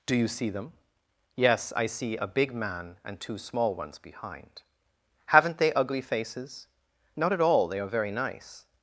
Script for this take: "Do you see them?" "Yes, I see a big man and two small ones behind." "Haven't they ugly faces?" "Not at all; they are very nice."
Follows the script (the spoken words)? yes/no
yes